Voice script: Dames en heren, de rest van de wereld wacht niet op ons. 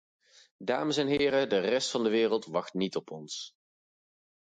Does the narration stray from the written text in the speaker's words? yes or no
no